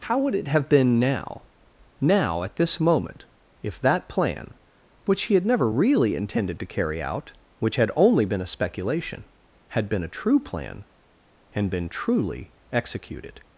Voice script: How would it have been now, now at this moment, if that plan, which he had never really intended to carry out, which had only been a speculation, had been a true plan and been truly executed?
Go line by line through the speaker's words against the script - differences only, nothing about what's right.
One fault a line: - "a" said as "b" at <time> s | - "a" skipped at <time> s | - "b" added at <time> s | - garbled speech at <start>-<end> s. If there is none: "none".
none